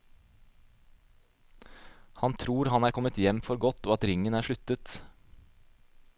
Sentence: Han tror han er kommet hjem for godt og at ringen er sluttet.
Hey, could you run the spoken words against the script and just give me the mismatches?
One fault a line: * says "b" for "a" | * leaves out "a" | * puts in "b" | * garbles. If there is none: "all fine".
all fine